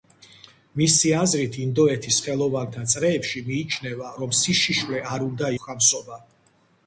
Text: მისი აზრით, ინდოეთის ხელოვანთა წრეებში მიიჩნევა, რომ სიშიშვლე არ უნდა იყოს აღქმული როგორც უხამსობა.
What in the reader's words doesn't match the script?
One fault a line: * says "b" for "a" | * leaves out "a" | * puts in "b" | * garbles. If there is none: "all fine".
* leaves out "იყოს აღქმული როგორც"